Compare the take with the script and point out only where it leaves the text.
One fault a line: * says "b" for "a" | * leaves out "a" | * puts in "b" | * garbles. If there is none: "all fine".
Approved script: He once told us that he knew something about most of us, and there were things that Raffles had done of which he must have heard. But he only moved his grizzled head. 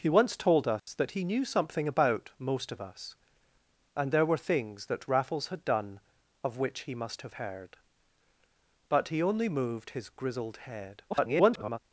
* garbles